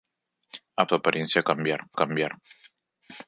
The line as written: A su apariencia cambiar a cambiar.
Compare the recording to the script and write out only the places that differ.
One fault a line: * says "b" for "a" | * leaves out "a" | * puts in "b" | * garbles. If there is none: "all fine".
all fine